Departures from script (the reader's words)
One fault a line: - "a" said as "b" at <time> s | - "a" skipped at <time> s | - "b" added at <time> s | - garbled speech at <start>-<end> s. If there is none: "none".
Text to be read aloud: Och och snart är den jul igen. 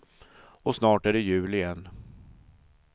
- "och" skipped at 0.8 s
- "den" said as "det" at 1.1 s